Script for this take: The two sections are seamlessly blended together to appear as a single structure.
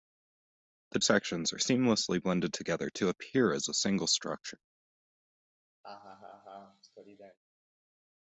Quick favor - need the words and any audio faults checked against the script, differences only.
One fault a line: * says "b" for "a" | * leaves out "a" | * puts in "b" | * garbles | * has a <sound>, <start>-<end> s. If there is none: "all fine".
* leaves out "two"
* has a laugh, 5.8-7.4 s